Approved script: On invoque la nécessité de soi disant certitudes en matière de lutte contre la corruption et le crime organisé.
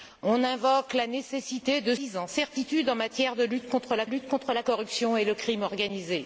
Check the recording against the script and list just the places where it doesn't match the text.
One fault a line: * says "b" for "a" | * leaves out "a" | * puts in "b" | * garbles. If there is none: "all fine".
* leaves out "soi"
* puts in "lutte contre la"